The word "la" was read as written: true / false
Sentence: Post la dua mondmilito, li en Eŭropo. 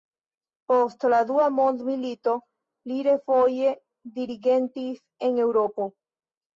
true